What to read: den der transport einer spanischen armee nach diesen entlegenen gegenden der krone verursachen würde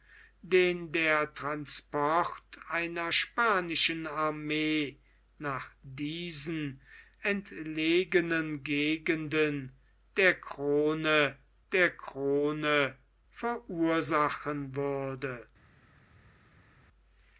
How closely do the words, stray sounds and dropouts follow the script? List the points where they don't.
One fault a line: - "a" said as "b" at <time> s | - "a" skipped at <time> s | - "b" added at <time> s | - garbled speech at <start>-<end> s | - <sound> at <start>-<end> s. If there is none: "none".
- "der krone" added at 11.7 s